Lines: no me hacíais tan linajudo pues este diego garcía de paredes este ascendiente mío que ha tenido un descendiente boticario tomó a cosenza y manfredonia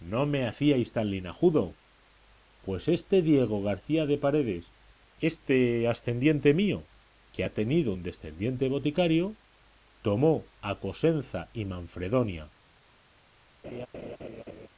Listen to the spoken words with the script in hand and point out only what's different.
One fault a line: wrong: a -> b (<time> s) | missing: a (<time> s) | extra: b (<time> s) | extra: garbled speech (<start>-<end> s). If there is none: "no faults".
no faults